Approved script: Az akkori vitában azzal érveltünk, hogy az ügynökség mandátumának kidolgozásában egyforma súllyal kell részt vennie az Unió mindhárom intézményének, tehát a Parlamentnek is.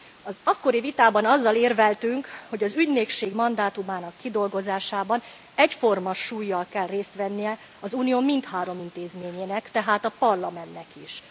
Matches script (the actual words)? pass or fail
pass